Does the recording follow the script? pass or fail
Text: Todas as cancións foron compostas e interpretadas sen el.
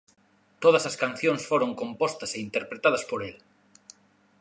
fail